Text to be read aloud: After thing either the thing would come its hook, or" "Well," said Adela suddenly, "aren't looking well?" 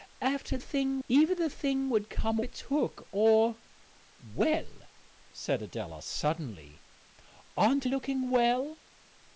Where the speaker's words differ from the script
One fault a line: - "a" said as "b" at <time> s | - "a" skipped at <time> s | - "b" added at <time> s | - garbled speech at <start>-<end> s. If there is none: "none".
none